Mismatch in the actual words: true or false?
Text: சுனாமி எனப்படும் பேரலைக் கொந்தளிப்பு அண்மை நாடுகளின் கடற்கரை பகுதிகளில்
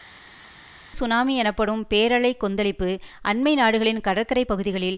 false